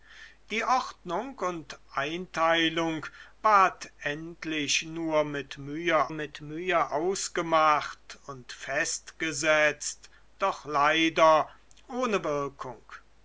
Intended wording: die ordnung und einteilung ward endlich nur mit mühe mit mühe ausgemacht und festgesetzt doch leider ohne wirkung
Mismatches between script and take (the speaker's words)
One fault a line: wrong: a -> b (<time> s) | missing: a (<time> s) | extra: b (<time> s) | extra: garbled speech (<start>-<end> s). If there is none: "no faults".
no faults